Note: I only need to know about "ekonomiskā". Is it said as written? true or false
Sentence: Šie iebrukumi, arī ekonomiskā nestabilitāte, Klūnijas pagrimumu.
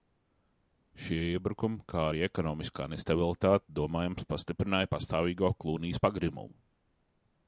true